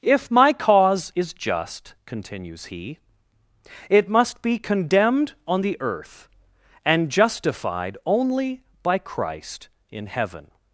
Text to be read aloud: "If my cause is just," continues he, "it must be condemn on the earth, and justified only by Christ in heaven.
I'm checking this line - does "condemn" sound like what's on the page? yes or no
no